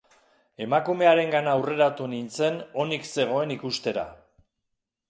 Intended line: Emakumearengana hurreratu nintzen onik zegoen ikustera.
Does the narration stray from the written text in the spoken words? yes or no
no